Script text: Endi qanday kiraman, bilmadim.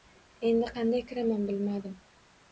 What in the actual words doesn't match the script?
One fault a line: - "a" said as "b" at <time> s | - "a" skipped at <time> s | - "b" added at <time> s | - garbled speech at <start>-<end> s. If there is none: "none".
none